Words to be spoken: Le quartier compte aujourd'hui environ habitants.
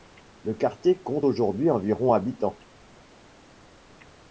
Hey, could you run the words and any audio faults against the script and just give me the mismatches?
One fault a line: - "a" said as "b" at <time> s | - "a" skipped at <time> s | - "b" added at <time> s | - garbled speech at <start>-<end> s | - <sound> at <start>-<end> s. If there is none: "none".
none